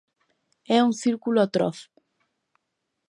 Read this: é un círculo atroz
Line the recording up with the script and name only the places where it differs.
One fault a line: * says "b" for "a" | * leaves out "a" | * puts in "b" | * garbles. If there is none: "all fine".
all fine